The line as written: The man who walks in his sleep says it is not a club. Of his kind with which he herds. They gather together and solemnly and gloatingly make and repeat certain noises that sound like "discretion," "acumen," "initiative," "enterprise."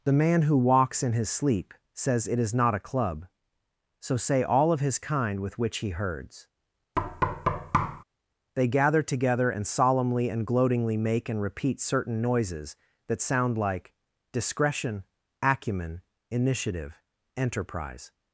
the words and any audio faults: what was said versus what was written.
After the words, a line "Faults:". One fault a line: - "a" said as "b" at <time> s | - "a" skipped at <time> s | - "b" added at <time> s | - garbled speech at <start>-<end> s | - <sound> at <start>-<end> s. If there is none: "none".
The man who walks in his sleep says it is not a club. So say all of his kind with which he herds. They gather together and solemnly and gloatingly make and repeat certain noises that sound like "discretion," "acumen," "initiative," "enterprise."
Faults:
- "So say all" added at 4.0 s
- thud at 7.0-8.0 s